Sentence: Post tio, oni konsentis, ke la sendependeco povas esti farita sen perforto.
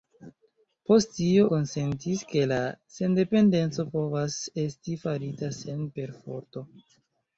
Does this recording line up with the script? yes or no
no